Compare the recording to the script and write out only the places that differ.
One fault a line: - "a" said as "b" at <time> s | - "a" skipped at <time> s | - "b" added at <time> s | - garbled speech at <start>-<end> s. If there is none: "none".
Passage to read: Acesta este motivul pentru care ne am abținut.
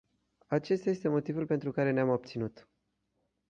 none